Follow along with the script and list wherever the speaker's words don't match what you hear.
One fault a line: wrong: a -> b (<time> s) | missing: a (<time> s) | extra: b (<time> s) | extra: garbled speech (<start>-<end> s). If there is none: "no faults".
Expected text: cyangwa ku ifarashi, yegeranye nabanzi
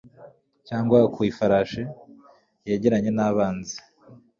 no faults